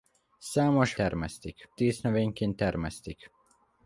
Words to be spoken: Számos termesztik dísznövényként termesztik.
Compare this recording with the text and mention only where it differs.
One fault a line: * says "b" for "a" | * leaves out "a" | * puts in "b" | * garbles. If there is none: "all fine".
all fine